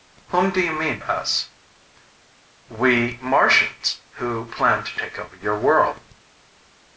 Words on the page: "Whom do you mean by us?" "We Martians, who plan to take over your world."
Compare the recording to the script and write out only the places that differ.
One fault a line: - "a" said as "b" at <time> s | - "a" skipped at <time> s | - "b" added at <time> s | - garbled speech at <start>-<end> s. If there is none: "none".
- "by" skipped at 1.0 s